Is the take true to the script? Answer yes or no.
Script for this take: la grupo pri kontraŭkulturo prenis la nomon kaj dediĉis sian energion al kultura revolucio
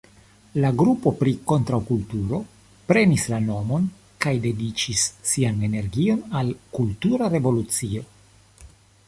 yes